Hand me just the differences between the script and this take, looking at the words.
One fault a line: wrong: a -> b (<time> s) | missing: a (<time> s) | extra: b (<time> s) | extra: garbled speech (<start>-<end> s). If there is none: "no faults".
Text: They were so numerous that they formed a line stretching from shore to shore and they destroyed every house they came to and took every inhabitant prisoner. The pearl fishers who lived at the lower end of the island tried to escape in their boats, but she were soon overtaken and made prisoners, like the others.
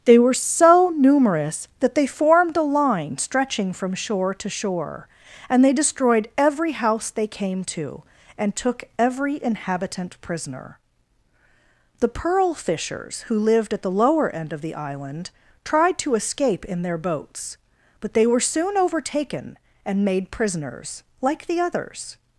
wrong: she -> they (18.1 s)